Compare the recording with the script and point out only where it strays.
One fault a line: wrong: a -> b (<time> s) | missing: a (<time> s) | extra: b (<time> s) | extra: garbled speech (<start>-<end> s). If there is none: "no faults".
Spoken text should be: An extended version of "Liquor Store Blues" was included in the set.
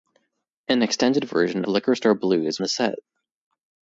missing: of (1.6 s)
missing: was included in (2.6 s)